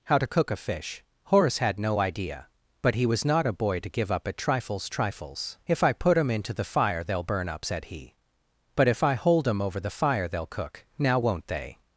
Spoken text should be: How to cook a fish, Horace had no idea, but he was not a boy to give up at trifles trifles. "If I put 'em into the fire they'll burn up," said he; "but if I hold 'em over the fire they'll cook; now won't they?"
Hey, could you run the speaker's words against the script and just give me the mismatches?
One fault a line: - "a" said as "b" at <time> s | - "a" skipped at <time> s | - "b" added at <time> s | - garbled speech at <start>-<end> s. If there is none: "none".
none